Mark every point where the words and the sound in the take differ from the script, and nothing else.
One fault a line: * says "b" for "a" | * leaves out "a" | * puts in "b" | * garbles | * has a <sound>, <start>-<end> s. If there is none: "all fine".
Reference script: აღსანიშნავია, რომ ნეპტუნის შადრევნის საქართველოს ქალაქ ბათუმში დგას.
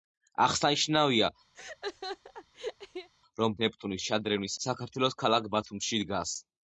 * has a laugh, 1.5-3.1 s